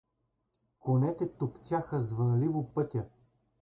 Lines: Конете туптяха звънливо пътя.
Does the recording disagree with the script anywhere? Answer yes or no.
no